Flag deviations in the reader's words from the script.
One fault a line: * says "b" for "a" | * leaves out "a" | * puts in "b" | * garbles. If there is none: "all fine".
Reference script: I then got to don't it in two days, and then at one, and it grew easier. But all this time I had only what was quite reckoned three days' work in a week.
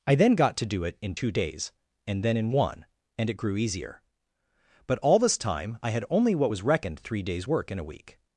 * says "do" for "don't"
* says "in" for "at"
* leaves out "quite"